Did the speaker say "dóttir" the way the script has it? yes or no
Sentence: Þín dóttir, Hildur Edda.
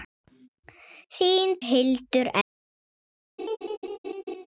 no